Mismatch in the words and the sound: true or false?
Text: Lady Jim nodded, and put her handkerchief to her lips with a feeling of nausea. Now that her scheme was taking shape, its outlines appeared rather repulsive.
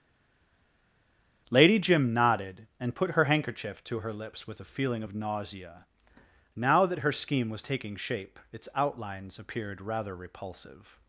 false